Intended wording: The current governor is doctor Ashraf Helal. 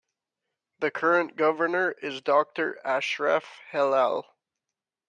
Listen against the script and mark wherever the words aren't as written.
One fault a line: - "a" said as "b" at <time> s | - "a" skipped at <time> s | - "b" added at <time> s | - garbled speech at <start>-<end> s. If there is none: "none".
none